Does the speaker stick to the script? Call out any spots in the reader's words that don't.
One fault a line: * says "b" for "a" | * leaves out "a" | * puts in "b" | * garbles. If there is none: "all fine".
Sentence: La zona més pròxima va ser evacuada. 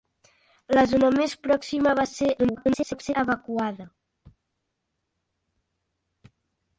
* garbles